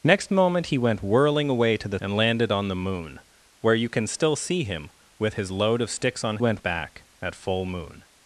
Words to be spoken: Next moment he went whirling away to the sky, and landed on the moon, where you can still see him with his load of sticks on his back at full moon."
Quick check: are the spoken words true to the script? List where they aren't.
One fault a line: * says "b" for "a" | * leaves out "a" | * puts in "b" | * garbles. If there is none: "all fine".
* leaves out "sky"
* says "went" for "his"